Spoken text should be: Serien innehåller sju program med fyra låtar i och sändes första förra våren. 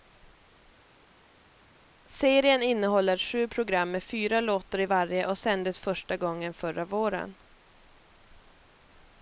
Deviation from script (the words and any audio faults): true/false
true